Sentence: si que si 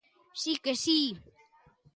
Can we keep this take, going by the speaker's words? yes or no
yes